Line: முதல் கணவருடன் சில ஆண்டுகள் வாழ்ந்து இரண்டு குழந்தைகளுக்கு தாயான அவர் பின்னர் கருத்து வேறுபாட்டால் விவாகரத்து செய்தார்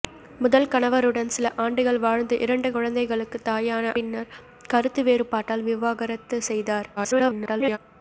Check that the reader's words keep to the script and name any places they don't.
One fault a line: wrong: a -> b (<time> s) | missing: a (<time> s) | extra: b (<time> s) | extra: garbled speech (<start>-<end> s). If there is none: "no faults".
missing: அவர் (3.9 s)
extra: garbled speech (7.0-7.8 s)